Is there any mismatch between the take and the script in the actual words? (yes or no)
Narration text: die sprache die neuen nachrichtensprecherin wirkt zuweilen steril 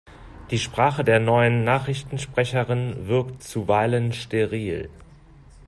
yes